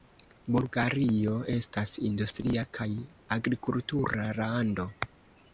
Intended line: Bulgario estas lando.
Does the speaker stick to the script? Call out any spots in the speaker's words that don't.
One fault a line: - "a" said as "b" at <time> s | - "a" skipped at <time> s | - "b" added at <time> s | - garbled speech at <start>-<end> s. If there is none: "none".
- "industria kaj agrikultura" added at 2.1 s